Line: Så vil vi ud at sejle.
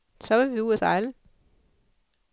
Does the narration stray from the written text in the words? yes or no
no